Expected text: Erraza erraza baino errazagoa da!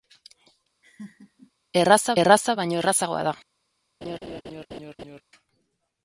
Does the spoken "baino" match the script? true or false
true